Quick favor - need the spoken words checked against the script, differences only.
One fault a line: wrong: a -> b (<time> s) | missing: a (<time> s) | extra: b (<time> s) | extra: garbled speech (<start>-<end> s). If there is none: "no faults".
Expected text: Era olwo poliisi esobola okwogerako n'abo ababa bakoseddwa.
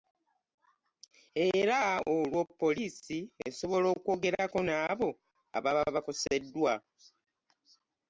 no faults